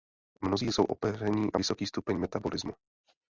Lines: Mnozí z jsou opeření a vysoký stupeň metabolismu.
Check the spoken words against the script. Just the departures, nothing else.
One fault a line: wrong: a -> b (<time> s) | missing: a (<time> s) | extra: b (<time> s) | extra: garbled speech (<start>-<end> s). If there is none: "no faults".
no faults